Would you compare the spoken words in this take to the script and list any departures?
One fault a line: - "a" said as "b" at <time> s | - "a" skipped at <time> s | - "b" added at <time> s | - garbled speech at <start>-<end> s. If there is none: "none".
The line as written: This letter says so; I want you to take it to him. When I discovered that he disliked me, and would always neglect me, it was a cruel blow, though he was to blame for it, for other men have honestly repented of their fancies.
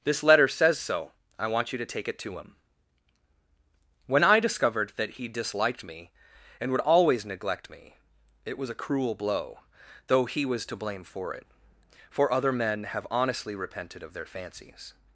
none